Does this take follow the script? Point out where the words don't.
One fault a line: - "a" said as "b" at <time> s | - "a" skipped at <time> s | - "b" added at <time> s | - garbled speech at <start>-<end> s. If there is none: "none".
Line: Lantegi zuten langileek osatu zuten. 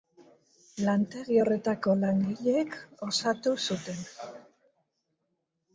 - "zuten" said as "horretako" at 1.4 s